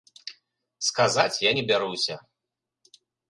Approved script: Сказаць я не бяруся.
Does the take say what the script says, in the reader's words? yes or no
yes